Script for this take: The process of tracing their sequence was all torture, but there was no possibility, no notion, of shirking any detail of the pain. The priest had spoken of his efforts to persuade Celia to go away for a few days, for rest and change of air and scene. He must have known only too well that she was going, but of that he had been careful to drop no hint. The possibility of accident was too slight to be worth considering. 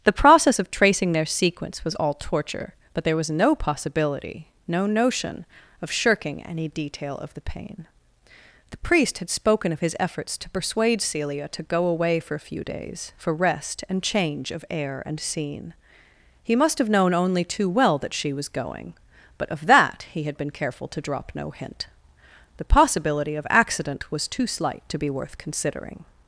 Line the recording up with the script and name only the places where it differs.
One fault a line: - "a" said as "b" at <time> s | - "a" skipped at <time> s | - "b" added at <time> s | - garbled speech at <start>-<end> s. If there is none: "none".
none